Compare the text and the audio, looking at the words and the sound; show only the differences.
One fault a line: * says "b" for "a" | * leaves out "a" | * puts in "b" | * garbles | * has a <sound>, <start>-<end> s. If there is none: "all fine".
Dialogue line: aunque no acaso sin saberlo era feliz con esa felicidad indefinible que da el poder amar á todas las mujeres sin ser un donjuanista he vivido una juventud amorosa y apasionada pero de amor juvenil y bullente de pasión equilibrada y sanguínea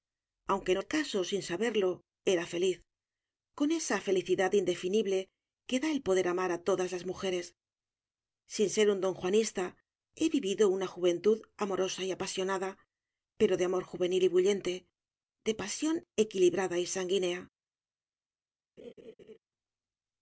* has a laugh, 18.8-19.4 s